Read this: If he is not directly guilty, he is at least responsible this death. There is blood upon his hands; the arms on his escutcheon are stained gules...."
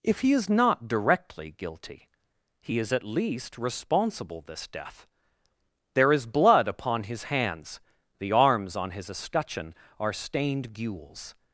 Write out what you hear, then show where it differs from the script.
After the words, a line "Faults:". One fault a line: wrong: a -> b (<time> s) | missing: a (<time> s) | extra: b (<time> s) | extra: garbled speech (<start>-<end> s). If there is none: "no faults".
If he is not directly guilty, he is at least responsible this death. There is blood upon his hands; the arms on his escutcheon are stained gules...."
Faults:
no faults